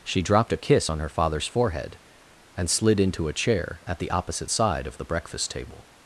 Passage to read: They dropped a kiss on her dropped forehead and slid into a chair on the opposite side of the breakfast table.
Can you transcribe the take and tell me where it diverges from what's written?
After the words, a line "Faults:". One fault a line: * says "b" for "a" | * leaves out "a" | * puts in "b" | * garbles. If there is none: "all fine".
She dropped a kiss on her father's forehead and slid into a chair at the opposite side of the breakfast table.
Faults:
* says "She" for "They"
* says "father's" for "dropped"
* says "at" for "on"